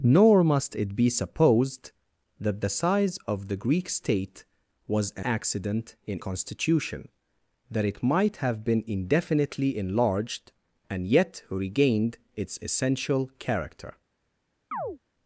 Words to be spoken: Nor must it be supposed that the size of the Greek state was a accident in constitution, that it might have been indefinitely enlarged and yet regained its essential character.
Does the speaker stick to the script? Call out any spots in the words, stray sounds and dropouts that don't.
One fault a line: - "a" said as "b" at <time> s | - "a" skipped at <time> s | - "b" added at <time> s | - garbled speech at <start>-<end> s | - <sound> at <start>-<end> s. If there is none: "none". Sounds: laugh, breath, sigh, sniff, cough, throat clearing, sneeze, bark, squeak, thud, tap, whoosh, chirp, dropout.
- chirp at 14.7-15.0 s